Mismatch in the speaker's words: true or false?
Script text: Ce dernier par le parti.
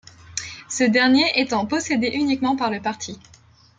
true